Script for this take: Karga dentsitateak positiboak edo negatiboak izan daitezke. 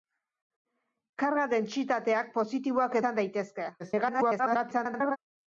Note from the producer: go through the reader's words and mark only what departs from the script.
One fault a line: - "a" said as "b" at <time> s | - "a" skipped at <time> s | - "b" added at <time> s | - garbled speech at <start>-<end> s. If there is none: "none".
- "edo negatiboak" skipped at 3.0 s
- garbled speech at 3.8-5.2 s